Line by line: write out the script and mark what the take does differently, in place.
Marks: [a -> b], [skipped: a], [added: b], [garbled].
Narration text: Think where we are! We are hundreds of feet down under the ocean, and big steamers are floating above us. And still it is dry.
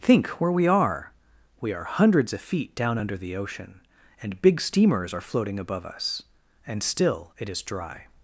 Think where we are! We are hundreds of feet down under the ocean, and big steamers are floating above us. And still it is dry.